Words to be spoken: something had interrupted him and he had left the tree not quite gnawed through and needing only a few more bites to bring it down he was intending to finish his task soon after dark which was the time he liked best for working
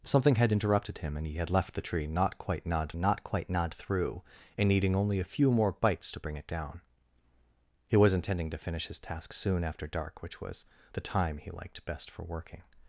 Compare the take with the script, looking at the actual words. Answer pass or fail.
fail